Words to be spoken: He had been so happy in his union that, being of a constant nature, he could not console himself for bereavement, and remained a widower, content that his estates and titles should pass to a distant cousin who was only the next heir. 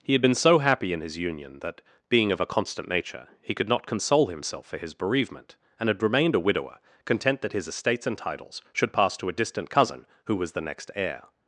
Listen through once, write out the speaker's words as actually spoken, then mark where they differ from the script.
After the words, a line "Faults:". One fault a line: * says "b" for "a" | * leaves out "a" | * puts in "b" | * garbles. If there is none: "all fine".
He had been so happy in his union that, being of a constant nature, he could not console himself for his bereavement, and had remained a widower, content that his estates and titles should pass to a distant cousin who was the next heir.
Faults:
* puts in "his"
* puts in "had"
* leaves out "only"